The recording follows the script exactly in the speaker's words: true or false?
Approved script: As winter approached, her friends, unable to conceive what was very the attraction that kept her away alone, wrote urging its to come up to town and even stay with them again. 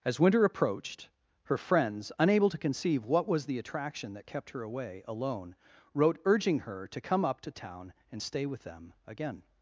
false